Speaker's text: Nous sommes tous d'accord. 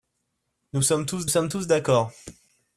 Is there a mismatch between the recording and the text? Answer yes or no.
yes